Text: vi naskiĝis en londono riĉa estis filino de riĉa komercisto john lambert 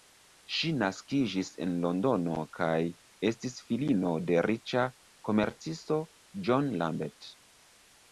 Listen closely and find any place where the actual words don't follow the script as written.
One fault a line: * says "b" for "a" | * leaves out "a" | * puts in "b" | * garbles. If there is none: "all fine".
* says "ŝi" for "vi"
* says "kaj" for "riĉa"